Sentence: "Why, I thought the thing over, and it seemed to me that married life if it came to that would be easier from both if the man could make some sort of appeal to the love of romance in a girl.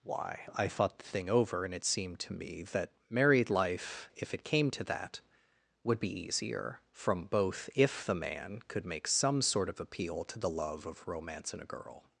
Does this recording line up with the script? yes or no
yes